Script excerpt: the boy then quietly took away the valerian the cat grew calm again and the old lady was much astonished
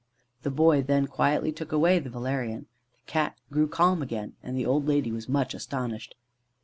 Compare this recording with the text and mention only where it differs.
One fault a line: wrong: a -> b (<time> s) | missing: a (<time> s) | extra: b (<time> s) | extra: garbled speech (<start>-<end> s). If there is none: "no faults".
no faults